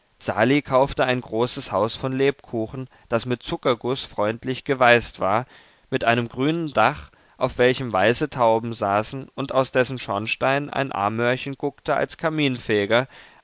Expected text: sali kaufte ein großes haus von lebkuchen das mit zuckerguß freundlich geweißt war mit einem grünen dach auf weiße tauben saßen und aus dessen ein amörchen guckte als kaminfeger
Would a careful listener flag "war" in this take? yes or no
no